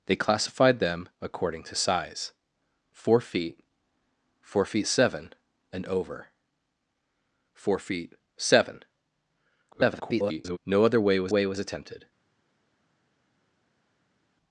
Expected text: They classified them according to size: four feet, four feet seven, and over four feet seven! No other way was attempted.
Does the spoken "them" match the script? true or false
true